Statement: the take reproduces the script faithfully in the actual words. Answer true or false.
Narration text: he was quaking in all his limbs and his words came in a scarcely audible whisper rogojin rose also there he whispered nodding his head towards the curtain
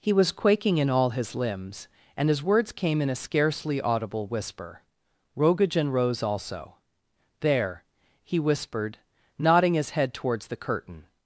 true